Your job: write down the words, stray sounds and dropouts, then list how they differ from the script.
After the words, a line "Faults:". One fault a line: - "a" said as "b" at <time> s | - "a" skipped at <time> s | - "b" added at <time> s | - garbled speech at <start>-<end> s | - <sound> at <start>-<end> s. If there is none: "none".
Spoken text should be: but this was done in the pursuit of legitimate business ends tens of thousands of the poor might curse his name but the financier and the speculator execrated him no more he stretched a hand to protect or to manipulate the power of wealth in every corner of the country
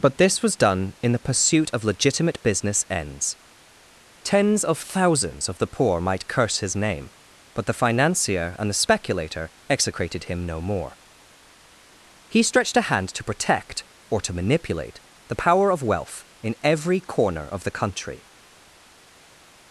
but this was done in the pursuit of legitimate business ends tens of thousands of the poor might curse his name but the financier and the speculator execrated him no more he stretched a hand to protect or to manipulate the power of wealth in every corner of the country
Faults:
none